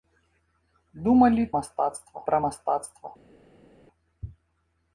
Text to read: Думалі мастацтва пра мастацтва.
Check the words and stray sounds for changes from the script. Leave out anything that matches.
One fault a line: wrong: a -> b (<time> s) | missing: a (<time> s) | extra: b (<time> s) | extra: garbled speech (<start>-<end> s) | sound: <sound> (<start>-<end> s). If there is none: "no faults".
no faults